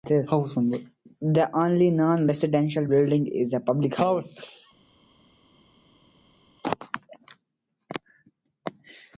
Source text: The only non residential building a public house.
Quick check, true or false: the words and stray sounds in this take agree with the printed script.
false